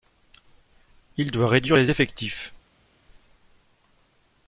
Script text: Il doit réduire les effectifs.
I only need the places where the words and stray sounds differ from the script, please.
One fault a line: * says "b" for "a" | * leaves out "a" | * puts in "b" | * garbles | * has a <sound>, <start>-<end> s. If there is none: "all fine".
all fine